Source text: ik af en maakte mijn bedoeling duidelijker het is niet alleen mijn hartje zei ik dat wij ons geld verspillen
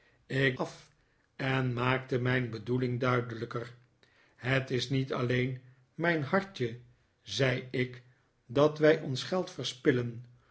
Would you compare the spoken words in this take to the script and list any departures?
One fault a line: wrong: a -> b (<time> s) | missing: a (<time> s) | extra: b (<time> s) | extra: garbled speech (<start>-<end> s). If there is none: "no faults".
no faults